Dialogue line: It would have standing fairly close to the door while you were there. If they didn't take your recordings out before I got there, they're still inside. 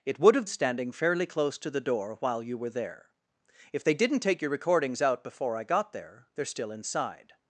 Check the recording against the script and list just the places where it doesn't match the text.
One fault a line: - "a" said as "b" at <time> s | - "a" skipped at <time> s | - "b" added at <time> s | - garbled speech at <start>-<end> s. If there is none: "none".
none